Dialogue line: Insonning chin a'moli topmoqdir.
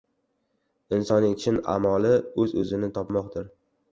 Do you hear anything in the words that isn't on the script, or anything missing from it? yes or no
yes